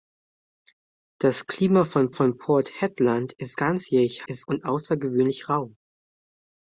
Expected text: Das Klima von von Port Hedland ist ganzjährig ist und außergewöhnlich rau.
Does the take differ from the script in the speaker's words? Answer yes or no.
no